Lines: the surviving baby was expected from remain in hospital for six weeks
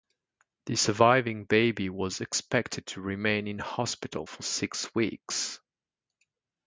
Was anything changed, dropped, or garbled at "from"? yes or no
yes